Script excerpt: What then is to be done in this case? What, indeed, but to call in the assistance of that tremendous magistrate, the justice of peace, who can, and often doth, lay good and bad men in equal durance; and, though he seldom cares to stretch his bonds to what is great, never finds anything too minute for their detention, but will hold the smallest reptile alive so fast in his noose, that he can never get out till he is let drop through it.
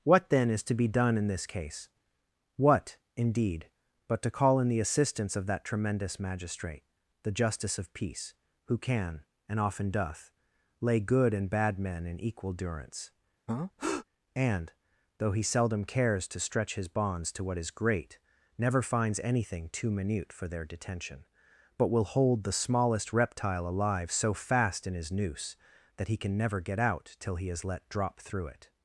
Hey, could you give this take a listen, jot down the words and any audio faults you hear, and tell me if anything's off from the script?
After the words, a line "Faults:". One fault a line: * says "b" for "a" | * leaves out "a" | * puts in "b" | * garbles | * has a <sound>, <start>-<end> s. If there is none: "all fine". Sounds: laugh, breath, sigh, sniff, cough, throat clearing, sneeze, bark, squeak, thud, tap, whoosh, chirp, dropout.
What then is to be done in this case? What, indeed, but to call in the assistance of that tremendous magistrate, the justice of peace, who can, and often doth, lay good and bad men in equal durance; and, though he seldom cares to stretch his bonds to what is great, never finds anything too minute for their detention, but will hold the smallest reptile alive so fast in his noose, that he can never get out till he is let drop through it.
Faults:
* has a breath, 13.5-14.1 s